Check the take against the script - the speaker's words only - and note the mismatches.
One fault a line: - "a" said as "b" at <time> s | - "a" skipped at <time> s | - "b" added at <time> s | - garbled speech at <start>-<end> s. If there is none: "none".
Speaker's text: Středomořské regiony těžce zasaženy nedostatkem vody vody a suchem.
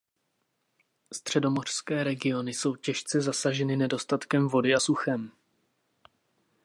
- "jsou" added at 2.5 s
- "vody" skipped at 4.8 s